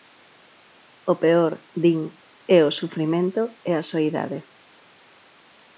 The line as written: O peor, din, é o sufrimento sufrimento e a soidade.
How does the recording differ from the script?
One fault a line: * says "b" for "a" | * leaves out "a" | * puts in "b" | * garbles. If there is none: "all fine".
* leaves out "sufrimento"